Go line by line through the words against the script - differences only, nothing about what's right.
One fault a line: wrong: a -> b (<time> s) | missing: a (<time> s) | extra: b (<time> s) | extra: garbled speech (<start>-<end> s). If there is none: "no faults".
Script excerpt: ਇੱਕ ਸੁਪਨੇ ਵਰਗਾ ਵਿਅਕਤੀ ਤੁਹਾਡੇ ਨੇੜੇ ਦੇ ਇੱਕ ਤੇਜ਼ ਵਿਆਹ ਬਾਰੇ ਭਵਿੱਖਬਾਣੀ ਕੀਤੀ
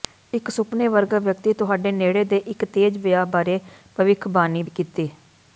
no faults